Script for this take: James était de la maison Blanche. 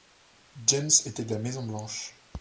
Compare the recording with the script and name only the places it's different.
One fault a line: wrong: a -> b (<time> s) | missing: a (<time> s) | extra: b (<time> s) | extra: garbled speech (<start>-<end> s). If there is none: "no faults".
no faults